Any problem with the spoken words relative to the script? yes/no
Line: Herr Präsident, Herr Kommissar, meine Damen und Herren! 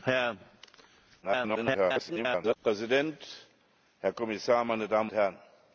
yes